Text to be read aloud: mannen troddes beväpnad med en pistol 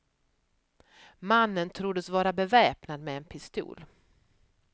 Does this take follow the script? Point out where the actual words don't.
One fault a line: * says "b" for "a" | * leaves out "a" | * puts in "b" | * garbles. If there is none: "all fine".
* puts in "vara"